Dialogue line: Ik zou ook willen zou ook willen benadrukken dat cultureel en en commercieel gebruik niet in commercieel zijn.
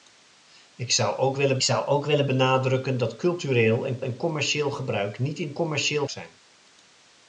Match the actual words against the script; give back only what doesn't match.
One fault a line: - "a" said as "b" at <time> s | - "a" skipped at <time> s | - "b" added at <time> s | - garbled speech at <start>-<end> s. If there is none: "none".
none